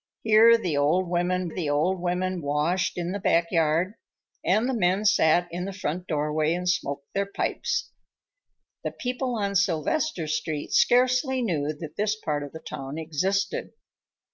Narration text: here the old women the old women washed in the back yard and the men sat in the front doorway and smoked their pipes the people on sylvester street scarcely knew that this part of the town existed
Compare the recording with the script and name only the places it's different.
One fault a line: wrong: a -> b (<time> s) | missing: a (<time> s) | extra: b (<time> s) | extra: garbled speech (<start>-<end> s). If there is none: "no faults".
no faults